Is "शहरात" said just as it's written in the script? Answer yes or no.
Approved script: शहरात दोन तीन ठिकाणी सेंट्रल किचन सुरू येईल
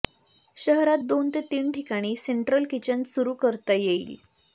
yes